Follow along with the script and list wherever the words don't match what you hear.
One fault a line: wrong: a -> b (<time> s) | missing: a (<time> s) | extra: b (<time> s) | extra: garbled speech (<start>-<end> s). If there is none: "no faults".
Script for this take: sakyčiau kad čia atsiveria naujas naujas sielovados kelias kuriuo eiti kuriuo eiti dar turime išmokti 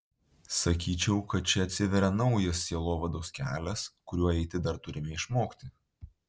missing: naujas (2.6 s)
missing: kuriuo eiti (4.6 s)